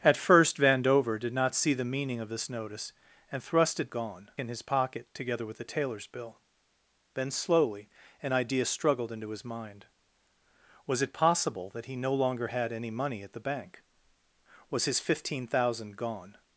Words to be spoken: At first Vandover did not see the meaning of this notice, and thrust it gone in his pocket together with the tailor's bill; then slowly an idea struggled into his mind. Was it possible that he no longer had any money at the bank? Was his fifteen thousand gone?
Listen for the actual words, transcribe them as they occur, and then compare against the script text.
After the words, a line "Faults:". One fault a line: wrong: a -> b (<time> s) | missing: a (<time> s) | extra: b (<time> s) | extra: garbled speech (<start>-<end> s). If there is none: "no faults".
At first Vandover did not see the meaning of this notice, and thrust it gone in his pocket together with the tailor's bill; then slowly an idea struggled into his mind. Was it possible that he no longer had any money at the bank? Was his fifteen thousand gone?
Faults:
no faults